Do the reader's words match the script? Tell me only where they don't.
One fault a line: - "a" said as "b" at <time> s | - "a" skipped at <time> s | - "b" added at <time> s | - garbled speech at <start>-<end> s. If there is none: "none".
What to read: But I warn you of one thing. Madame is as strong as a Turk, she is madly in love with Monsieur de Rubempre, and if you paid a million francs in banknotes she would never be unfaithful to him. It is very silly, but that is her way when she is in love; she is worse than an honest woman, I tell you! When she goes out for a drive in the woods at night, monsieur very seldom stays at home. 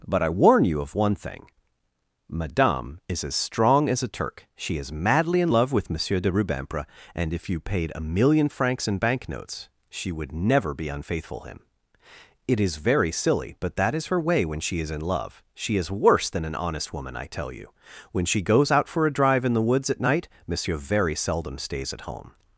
- "to" skipped at 11.4 s